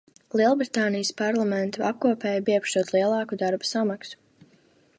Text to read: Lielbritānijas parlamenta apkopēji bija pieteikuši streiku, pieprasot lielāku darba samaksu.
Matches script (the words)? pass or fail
fail